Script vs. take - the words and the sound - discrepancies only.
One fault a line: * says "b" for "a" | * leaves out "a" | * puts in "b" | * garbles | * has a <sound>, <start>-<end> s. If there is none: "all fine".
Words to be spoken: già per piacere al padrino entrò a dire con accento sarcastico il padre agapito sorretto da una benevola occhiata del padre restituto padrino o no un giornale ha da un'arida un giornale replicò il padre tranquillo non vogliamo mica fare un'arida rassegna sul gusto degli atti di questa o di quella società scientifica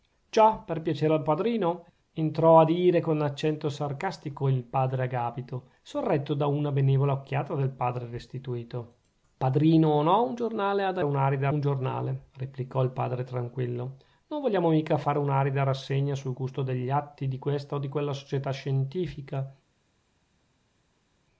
all fine